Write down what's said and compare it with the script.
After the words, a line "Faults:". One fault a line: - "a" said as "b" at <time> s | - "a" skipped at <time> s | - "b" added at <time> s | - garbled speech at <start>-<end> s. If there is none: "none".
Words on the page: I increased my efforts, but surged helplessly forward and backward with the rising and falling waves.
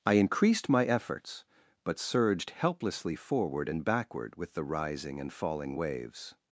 I increased my efforts, but surged helplessly forward and backward with the rising and falling waves.
Faults:
none